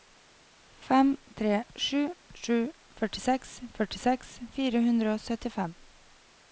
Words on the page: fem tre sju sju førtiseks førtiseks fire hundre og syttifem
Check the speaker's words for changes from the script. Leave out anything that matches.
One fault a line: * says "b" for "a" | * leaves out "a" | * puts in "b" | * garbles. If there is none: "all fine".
all fine